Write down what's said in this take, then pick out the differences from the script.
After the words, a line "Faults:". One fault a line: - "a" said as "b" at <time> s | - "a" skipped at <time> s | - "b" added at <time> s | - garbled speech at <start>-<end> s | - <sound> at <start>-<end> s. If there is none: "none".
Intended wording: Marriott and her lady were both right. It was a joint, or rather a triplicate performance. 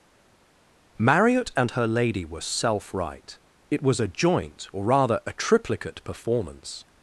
Marriott and her lady were self right. It was a joint, or rather a triplicate performance.
Faults:
- "both" said as "self" at 2.4 s